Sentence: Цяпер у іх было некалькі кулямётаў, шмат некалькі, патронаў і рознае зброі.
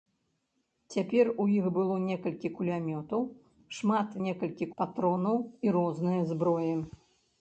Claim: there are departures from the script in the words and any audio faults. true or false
false